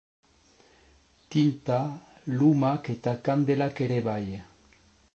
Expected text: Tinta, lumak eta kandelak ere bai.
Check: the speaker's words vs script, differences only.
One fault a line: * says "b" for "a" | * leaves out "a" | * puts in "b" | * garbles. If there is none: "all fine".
all fine